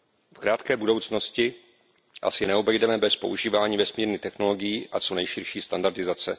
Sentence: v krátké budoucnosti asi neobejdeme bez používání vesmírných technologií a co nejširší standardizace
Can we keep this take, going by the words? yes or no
yes